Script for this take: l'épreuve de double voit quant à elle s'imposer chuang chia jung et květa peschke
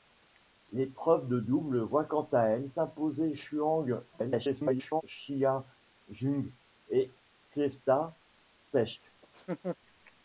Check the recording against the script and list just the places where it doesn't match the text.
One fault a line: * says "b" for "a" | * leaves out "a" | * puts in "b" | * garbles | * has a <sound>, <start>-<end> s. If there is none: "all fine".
* garbles
* has a laugh, 9.2-9.8 s